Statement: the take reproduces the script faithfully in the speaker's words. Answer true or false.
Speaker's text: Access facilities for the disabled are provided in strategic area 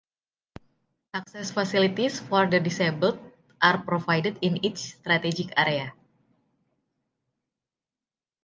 false